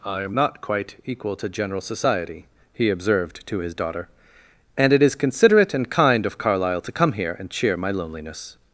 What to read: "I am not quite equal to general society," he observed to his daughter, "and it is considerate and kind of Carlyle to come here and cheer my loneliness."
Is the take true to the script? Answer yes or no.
yes